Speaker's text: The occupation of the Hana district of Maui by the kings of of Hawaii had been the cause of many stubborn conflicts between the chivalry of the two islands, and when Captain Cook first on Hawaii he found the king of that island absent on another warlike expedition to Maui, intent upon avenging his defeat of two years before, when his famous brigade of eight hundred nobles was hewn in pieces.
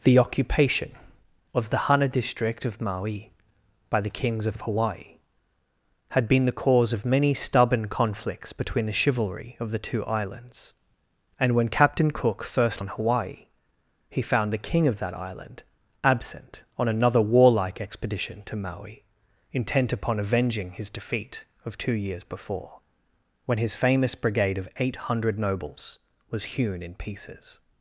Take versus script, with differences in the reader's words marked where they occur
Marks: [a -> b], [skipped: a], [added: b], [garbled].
The occupation of the Hana district of Maui by the kings of of Hawaii had been the cause of many stubborn conflicts between the chivalry of the two islands, and when Captain Cook first on Hawaii he found the king of that island absent on another warlike expedition to Maui, intent upon avenging his defeat of two years before, when his famous brigade of eight hundred nobles was hewn in pieces.